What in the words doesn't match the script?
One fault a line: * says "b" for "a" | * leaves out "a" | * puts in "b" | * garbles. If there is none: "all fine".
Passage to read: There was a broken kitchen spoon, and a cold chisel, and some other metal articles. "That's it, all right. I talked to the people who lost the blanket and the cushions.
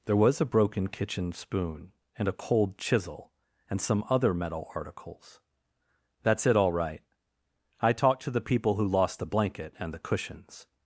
all fine